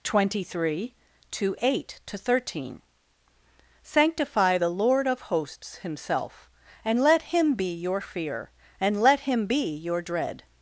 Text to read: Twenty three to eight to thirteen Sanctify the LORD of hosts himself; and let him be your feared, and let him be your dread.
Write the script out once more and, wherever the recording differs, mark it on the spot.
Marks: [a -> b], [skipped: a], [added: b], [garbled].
Twenty three to eight to thirteen Sanctify the LORD of hosts himself; and let him be your [feared, -> fear] and let him be your dread.